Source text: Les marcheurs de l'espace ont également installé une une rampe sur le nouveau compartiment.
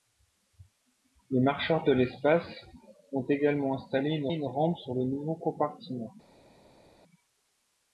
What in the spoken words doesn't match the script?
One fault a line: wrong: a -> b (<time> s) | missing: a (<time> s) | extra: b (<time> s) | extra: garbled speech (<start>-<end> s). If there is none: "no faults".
no faults